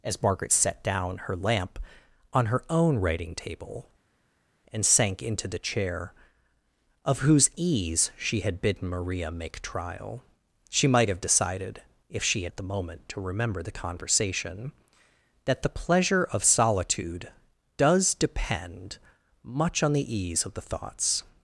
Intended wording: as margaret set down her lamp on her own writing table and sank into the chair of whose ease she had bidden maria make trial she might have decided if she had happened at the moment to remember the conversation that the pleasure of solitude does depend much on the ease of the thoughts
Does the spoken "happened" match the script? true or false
false